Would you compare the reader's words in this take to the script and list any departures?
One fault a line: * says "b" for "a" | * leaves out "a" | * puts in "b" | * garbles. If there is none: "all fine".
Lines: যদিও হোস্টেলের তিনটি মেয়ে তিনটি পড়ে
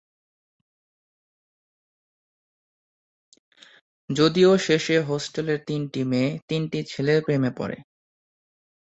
* puts in "শেষে"
* puts in "ছেলের প্রেমে"